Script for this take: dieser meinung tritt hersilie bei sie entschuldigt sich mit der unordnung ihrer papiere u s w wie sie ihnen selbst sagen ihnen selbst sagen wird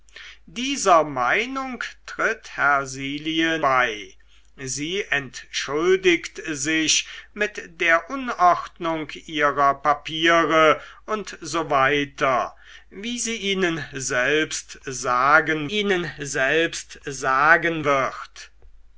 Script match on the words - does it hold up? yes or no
yes